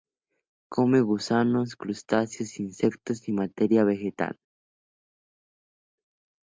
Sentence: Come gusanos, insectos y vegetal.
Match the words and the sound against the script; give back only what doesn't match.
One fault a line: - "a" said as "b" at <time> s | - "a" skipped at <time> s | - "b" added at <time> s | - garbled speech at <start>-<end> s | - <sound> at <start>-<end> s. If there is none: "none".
- "crustáceos" added at 1.8 s
- "materia" added at 3.3 s